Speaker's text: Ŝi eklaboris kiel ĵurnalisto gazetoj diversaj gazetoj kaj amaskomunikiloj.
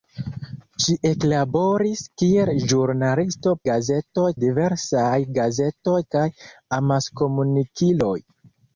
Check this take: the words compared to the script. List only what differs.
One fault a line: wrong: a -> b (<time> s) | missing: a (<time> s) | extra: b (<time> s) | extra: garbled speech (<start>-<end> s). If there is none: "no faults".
no faults